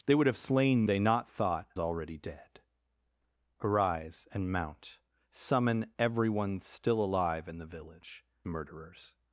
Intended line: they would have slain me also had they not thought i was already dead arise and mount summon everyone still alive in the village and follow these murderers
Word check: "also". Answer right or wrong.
wrong